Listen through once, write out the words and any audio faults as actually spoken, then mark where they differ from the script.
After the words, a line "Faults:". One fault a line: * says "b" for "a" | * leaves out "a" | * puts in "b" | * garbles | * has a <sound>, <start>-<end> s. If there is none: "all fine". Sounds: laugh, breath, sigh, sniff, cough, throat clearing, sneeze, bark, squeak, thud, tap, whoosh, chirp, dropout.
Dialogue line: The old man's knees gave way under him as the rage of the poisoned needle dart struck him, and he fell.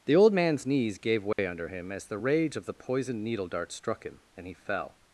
The old man's knees gave way under him as the rage of the poisoned needle dart struck him, and he fell.
Faults:
* has a dropout, 1.3-1.4 s